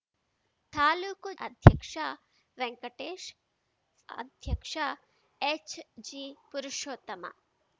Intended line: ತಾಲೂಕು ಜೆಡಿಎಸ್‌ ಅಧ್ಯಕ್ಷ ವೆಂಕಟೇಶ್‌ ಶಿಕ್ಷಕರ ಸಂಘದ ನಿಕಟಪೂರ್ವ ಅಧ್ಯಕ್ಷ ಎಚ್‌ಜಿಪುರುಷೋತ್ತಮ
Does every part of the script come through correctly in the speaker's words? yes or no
no